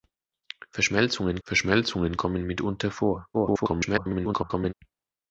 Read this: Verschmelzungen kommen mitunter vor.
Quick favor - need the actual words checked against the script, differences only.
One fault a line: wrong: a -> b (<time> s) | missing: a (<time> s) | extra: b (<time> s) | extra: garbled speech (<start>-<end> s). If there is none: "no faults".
extra: verschmelzungen (1.4 s)
extra: garbled speech (3.3-4.7 s)